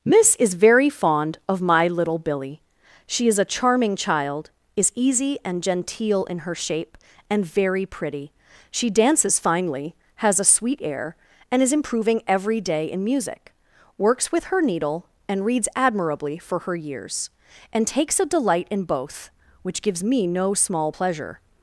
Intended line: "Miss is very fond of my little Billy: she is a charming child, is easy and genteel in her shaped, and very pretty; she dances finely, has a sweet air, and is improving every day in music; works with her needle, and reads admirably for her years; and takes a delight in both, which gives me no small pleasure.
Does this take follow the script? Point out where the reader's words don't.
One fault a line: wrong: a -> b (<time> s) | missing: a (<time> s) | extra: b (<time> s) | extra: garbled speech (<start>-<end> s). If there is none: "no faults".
wrong: shaped -> shape (6.5 s)